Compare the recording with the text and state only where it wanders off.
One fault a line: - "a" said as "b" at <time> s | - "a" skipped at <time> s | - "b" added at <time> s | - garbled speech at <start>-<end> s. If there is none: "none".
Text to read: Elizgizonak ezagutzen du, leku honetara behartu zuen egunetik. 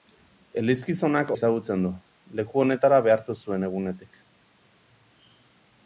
none